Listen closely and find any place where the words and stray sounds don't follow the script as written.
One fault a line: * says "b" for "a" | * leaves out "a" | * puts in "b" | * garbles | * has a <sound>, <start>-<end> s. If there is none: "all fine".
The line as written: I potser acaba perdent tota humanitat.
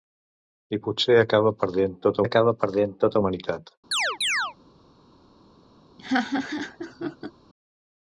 * puts in "acaba perdent tota"
* has a chirp, 3.9-4.5 s
* has a laugh, 6.0-7.3 s